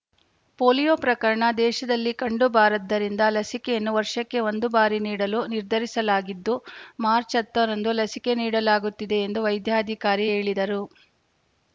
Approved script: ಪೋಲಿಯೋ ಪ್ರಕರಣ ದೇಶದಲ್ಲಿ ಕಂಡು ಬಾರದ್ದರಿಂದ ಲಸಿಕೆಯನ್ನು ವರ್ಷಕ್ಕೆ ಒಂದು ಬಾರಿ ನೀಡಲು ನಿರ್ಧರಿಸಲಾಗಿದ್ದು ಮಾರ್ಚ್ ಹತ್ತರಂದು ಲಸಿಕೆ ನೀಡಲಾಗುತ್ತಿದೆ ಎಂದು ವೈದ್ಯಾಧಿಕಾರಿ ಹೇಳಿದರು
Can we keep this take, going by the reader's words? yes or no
yes